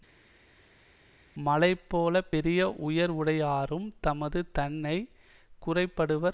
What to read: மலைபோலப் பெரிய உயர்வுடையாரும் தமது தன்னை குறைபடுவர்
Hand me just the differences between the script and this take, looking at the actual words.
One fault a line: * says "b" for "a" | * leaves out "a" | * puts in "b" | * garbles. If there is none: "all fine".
all fine